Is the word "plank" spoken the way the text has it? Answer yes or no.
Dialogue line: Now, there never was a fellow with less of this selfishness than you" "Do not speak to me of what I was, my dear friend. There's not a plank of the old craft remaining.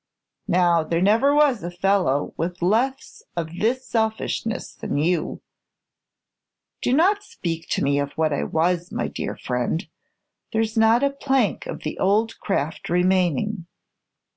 yes